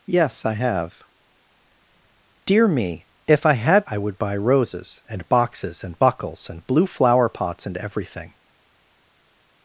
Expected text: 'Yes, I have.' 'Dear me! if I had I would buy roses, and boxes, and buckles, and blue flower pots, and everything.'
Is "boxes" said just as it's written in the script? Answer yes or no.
yes